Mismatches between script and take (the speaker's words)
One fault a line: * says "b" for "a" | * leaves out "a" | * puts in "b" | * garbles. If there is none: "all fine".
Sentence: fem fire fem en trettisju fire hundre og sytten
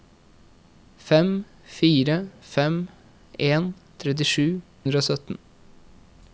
* leaves out "fire"